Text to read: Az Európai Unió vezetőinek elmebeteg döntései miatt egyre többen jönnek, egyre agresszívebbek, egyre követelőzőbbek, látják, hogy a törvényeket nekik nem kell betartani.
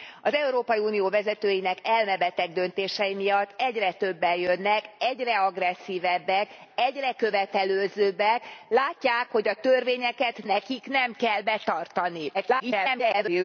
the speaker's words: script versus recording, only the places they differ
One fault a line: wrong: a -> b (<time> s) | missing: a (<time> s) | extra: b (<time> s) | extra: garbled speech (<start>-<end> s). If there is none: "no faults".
extra: garbled speech (12.3-13.4 s)